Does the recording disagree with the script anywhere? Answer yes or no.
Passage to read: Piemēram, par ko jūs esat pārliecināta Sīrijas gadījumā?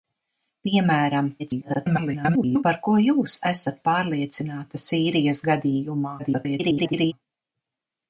yes